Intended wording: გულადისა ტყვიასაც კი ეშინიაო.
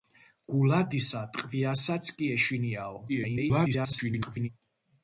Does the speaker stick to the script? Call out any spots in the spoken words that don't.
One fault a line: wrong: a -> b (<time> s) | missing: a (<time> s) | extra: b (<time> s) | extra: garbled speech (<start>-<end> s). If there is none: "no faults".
extra: garbled speech (3.1-4.5 s)